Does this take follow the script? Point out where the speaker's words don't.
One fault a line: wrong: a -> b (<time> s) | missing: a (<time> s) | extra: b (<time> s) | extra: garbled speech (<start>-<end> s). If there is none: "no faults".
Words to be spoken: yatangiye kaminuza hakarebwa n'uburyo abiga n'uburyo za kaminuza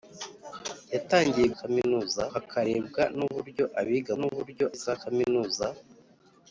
no faults